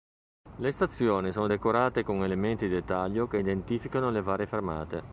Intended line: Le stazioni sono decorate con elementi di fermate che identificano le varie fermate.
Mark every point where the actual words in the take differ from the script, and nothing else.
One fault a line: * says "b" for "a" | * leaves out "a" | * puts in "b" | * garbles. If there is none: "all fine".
* says "dettaglio" for "fermate"